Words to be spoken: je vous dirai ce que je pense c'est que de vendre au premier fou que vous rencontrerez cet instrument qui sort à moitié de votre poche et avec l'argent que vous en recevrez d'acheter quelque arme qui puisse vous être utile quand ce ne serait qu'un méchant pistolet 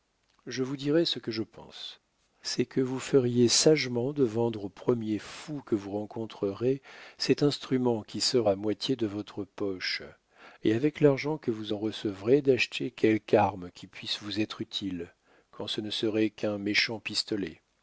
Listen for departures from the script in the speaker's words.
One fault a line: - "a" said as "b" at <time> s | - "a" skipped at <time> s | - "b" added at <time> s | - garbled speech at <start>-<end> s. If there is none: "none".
- "vous feriez sagement" added at 2.8 s